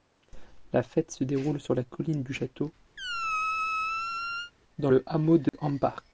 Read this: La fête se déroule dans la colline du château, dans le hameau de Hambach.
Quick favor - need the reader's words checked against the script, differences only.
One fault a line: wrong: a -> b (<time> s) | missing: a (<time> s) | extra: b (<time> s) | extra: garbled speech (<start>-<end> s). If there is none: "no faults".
wrong: dans -> sur (1.6 s)